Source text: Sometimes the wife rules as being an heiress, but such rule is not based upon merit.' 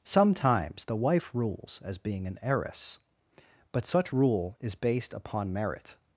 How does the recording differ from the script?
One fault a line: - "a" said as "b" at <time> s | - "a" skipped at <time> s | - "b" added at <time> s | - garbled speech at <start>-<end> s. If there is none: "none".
- "not" skipped at 4.7 s